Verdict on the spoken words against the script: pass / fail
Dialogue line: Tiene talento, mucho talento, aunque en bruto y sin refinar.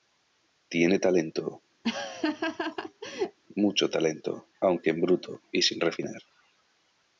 pass